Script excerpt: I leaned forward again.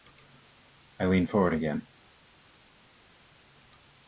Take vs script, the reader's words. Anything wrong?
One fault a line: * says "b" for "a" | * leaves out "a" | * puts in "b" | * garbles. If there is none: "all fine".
all fine